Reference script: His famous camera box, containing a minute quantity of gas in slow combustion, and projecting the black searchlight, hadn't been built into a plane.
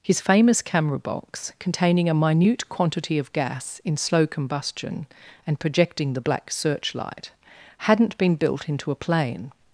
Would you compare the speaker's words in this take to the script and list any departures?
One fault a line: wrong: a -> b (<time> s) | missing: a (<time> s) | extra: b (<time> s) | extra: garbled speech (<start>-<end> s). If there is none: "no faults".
no faults